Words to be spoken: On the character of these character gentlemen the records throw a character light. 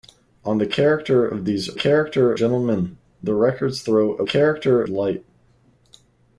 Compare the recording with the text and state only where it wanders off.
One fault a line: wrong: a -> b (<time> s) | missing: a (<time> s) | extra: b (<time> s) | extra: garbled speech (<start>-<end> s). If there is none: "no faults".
no faults